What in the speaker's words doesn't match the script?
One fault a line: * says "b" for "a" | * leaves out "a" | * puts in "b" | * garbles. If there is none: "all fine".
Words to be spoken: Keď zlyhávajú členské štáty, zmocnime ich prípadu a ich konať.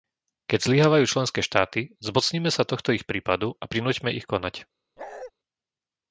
* puts in "sa tohto"
* puts in "prinúťme"